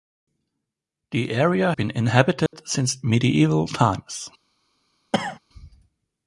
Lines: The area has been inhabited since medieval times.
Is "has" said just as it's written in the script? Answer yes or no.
no